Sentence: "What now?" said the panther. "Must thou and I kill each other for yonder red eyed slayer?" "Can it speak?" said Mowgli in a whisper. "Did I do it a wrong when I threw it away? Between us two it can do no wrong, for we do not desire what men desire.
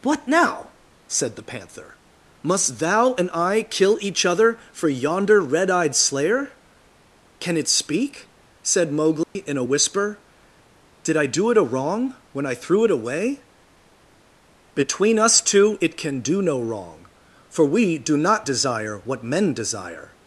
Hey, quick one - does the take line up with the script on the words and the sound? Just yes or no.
no